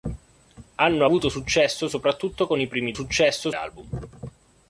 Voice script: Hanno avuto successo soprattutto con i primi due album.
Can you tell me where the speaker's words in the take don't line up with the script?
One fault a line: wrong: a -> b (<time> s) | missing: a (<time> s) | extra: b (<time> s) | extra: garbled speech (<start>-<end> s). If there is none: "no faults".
wrong: due -> successo (2.9 s)